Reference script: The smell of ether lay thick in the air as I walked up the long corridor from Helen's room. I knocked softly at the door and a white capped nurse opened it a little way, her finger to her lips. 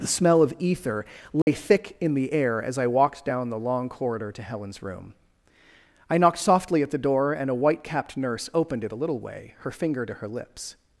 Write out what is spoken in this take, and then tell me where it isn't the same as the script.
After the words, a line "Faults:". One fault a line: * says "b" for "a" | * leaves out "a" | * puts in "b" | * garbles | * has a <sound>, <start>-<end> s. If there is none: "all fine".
The smell of ether lay thick in the air as I walked down the long corridor to Helen's room. I knocked softly at the door and a white capped nurse opened it a little way, her finger to her lips.
Faults:
* has a dropout, 1.4-1.5 s
* says "down" for "up"
* says "to" for "from"